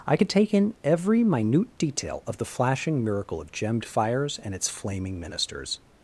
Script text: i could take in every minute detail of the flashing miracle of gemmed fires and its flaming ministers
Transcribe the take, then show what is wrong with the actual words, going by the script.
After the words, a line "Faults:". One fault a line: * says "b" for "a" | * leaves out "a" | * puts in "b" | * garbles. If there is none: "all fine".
i could take in every minute detail of the flashing miracle of gemmed fires and its flaming ministers
Faults:
all fine